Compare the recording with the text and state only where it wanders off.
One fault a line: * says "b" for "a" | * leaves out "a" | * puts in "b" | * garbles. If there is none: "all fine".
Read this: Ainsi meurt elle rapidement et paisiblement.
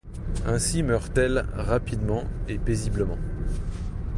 all fine